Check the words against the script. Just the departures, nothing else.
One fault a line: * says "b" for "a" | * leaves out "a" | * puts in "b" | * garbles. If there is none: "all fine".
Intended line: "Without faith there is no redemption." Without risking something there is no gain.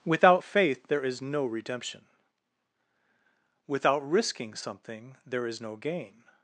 all fine